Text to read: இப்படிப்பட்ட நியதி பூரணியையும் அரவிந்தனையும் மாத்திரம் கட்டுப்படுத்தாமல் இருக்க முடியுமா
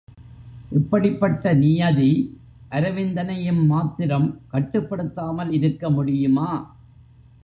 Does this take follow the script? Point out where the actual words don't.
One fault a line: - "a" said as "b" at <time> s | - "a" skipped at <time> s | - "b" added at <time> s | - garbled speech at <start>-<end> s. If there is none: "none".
- "பூரணியையும்" skipped at 2.1 s